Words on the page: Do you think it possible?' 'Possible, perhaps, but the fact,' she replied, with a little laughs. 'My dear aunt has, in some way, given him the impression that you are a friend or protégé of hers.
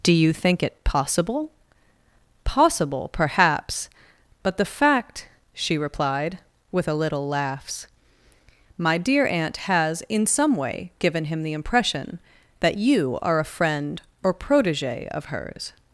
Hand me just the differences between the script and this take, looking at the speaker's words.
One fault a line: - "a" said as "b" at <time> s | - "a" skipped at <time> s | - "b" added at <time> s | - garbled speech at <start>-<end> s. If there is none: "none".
none